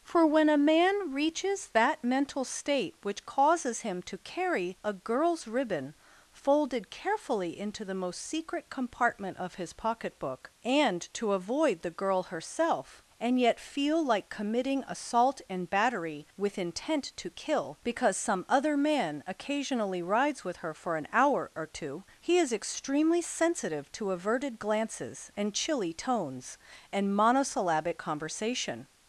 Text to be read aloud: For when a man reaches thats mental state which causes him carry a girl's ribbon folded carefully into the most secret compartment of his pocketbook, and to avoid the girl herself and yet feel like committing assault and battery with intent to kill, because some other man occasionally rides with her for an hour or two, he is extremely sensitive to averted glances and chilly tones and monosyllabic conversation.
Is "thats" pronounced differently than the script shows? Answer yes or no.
yes